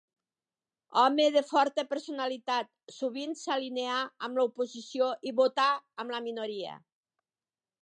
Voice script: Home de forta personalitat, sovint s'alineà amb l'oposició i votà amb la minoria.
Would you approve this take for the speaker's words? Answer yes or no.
yes